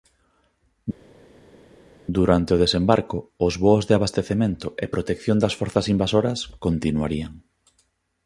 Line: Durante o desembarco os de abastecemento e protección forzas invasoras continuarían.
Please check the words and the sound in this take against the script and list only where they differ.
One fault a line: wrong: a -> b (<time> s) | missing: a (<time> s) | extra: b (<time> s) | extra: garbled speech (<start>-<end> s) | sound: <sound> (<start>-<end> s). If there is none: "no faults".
extra: voos (3.6 s)
extra: das (5.4 s)